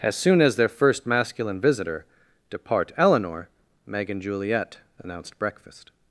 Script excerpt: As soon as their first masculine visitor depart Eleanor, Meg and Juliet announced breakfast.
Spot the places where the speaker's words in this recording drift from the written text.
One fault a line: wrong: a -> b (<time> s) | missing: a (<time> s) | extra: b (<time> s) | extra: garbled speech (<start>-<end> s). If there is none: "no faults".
no faults